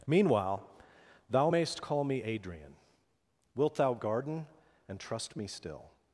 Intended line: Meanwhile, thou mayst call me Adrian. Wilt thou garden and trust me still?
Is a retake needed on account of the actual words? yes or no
no